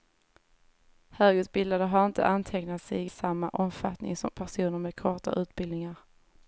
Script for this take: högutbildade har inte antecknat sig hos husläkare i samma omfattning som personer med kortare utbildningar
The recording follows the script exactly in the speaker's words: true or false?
false